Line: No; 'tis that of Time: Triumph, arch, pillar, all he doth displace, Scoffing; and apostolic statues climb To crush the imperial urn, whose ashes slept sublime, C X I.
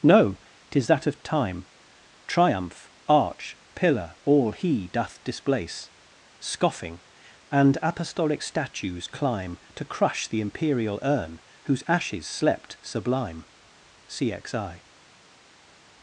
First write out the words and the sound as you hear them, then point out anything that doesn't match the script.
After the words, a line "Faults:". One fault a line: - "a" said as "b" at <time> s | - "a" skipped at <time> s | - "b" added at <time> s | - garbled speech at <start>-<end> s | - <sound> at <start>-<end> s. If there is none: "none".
No; 'tis that of Time: Triumph, arch, pillar, all he doth displace, Scoffing; and apostolic statues climb To crush the imperial urn, whose ashes slept sublime, C X I.
Faults:
none